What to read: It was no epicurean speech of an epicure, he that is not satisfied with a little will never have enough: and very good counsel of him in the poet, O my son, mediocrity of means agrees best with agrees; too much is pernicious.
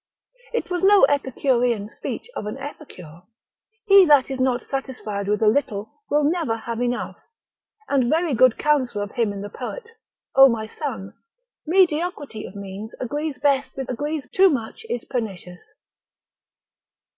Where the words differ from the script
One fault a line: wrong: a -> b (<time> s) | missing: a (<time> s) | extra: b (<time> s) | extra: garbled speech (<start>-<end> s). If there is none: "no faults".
no faults